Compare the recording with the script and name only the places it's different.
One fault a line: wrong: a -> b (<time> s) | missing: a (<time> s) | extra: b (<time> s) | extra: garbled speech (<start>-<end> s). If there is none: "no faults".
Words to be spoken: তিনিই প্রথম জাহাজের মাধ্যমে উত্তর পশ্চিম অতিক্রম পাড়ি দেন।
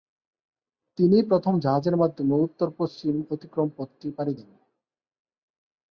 extra: পথটি (3.8 s)